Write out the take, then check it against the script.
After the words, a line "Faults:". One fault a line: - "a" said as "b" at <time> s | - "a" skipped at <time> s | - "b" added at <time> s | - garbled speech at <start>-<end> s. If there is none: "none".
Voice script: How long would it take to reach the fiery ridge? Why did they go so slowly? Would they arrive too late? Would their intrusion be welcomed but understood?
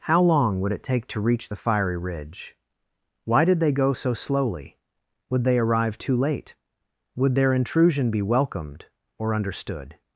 How long would it take to reach the fiery ridge? Why did they go so slowly? Would they arrive too late? Would their intrusion be welcomed or understood?
Faults:
- "but" said as "or" at 9.2 s